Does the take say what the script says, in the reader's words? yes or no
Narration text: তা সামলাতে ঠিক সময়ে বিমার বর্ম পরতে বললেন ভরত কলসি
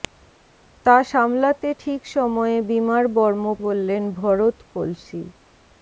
no